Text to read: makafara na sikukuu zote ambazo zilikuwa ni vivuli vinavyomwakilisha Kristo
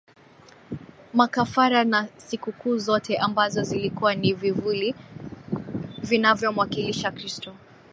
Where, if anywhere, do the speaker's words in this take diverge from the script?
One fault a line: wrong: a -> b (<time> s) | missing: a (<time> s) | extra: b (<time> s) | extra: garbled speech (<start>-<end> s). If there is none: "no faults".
no faults